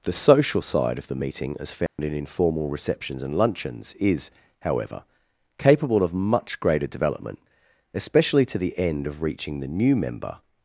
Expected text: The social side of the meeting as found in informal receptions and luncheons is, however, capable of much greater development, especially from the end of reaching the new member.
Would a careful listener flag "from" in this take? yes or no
yes